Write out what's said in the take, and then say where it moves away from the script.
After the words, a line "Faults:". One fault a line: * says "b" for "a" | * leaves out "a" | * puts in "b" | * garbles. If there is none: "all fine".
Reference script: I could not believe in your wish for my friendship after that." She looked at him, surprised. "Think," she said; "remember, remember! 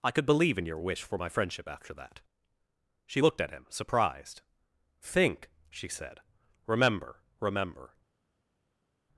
I could believe in your wish for my friendship after that." She looked at him, surprised. "Think," she said; "remember, remember!
Faults:
* leaves out "not"